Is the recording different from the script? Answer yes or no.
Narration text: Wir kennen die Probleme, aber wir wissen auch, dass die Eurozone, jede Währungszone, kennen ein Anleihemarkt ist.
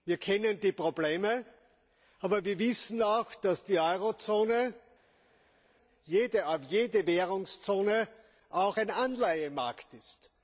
yes